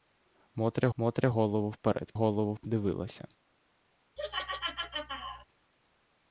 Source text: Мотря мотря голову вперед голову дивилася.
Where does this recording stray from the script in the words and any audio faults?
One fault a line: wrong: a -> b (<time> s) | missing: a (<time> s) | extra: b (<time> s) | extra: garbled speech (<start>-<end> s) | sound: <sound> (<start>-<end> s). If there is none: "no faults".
sound: laugh (4.2-5.5 s)